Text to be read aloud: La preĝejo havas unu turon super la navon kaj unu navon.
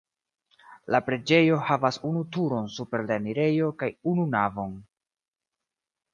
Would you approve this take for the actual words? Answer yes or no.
no